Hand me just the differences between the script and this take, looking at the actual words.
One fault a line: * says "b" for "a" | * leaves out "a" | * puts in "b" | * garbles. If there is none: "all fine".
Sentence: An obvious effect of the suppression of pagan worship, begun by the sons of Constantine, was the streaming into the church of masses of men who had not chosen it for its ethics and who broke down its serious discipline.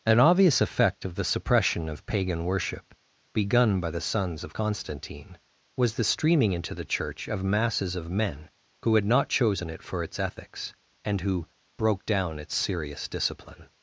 all fine